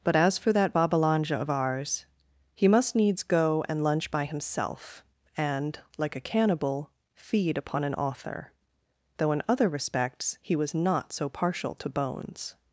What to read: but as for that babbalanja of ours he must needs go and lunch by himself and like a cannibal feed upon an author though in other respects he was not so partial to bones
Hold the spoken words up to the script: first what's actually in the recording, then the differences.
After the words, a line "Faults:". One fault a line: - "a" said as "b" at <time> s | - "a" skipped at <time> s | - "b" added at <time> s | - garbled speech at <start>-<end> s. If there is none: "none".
but as for that babbalanja of ours he must needs go and lunch by himself and like a cannibal feed upon an author though in other respects he was not so partial to bones
Faults:
none